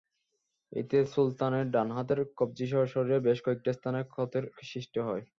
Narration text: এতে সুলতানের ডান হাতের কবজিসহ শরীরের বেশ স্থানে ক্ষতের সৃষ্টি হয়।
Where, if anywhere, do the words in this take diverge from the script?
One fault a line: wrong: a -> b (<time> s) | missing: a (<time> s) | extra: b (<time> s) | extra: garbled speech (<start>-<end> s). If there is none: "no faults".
extra: কয়েকটি (3.5 s)